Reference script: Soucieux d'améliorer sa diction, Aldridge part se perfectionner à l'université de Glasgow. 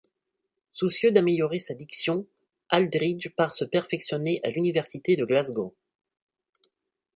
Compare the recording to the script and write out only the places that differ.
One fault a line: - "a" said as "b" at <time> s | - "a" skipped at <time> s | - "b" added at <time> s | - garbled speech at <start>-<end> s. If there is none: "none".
none